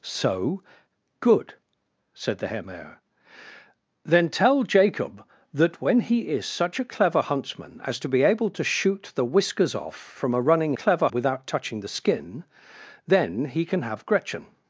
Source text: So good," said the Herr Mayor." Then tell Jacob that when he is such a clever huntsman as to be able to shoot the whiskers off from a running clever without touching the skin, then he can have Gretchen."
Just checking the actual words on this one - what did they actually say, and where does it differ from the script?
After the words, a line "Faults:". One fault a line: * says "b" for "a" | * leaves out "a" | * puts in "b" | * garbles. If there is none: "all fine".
So good," said the Herr Mayor." Then tell Jacob that when he is such a clever huntsman as to be able to shoot the whiskers off from a running clever without touching the skin, then he can have Gretchen."
Faults:
all fine